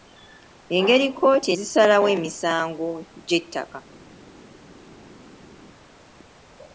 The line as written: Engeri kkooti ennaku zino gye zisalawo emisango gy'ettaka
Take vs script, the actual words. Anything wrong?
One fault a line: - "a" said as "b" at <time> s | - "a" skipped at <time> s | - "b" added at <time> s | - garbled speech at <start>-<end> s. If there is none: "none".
- "ennaku zino gye" skipped at 1.5 s